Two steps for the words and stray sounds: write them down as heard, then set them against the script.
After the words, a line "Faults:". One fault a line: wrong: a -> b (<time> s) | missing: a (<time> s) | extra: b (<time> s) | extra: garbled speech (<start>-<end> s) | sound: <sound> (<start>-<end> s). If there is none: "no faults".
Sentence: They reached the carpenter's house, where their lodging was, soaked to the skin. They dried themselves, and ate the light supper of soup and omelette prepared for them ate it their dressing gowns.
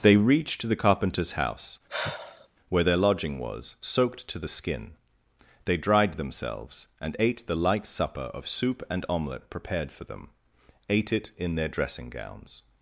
They reached the carpenter's house, where their lodging was, soaked to the skin. They dried themselves, and ate the light supper of soup and omelette prepared for them ate it in their dressing gowns.
Faults:
sound: sigh (1.9-2.5 s)
extra: in (11.4 s)